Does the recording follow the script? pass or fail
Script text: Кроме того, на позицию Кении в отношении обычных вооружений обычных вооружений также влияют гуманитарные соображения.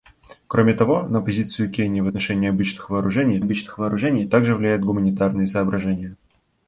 pass